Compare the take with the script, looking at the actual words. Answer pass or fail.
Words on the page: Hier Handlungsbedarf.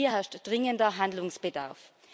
fail